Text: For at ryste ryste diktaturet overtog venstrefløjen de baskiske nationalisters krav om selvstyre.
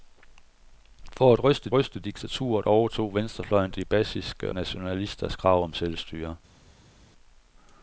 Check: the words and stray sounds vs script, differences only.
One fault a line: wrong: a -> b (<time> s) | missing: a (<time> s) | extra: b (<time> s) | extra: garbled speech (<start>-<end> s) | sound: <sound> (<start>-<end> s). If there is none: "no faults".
no faults